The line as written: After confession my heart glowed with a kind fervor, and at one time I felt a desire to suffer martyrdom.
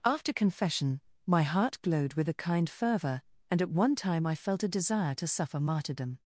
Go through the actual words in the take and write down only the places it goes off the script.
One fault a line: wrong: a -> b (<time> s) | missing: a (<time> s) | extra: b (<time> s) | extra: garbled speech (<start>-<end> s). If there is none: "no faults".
no faults